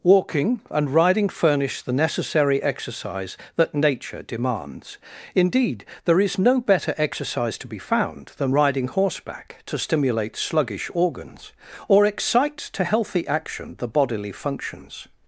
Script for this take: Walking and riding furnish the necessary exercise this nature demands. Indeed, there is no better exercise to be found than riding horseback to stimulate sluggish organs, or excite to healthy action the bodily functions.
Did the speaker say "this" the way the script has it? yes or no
no